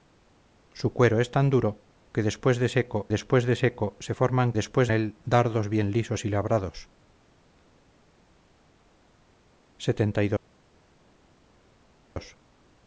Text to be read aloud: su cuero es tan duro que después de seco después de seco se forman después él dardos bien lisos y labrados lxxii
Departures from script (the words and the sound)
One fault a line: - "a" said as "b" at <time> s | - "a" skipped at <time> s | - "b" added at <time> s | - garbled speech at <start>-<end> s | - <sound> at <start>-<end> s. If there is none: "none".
none